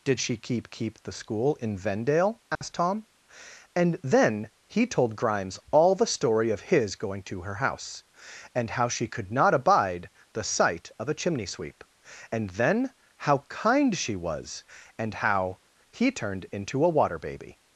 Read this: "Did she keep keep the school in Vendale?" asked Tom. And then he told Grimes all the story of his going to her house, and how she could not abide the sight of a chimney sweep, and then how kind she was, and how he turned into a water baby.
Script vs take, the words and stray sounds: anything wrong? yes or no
yes